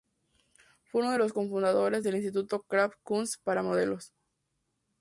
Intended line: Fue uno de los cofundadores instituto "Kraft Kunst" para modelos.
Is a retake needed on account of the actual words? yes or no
yes